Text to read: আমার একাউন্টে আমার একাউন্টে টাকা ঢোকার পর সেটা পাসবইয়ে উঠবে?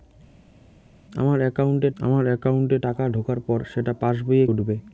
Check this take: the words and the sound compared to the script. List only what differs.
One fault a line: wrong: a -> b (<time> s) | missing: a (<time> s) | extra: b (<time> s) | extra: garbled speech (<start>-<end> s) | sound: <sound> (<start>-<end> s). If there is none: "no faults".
no faults